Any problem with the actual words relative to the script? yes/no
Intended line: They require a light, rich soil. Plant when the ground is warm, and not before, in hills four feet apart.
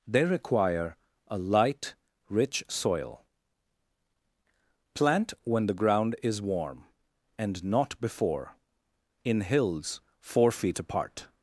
no